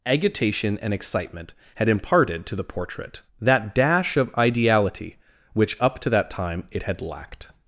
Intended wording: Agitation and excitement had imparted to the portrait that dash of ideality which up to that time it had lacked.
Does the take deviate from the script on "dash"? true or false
false